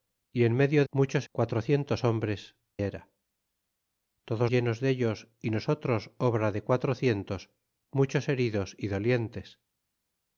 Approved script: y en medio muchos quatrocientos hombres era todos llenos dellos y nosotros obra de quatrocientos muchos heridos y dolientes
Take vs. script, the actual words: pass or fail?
pass